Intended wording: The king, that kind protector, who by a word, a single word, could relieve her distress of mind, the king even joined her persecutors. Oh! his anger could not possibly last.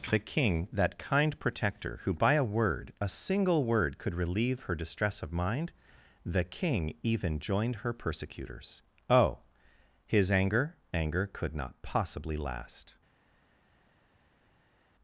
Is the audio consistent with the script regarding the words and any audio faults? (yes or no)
no